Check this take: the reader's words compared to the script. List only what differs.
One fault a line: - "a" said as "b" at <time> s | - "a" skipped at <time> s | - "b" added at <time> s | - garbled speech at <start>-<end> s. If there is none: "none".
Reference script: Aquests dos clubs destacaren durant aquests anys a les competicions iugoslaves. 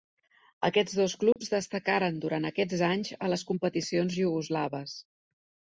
none